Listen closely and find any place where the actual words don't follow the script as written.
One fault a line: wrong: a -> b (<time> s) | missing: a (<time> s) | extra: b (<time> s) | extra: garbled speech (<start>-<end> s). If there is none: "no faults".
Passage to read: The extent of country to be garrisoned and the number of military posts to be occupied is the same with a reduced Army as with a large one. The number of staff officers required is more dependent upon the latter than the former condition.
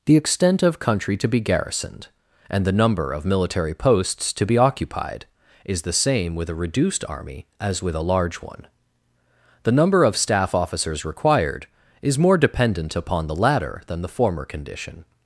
no faults